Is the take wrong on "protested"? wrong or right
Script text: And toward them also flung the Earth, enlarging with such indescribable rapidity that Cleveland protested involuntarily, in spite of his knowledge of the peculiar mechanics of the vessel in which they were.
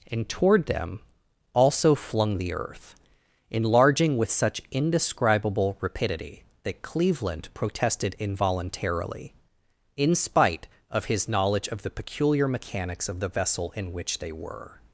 right